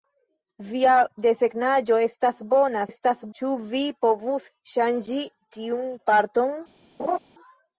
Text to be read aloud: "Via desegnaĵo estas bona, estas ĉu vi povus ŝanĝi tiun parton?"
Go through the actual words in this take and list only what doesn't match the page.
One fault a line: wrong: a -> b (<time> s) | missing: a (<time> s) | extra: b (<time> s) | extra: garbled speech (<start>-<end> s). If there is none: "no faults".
no faults